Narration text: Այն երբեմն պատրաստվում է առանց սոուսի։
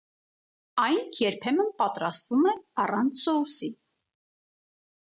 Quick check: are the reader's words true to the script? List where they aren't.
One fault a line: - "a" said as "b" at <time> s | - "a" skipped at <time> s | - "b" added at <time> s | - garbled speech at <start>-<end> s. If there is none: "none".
none